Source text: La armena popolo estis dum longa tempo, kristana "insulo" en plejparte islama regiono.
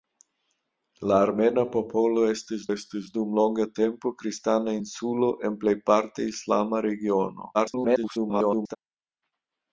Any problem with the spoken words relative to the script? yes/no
yes